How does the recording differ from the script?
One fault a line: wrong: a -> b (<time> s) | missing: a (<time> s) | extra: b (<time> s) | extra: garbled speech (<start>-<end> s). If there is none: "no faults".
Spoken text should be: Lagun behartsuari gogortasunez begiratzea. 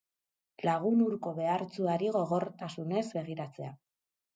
extra: hurko (1.1 s)